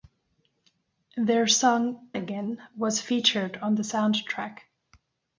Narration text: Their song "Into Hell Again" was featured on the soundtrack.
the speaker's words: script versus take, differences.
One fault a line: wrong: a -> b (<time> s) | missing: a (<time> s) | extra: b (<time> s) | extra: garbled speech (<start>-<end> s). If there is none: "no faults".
missing: Into Hell (2.1 s)